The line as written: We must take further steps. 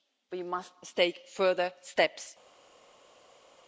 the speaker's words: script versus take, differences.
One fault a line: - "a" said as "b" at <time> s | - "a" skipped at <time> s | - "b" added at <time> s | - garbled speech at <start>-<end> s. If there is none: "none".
none